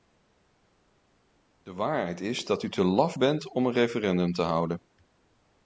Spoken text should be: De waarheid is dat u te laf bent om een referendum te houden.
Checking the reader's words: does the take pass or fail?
pass